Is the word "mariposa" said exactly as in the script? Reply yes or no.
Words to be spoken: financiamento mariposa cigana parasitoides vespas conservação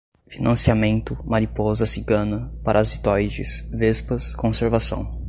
yes